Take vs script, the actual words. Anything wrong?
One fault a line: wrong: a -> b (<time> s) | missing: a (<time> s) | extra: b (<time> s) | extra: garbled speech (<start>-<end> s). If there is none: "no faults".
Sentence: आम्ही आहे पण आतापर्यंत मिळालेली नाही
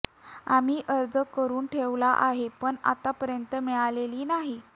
extra: अर्ज करून ठेवला (0.9 s)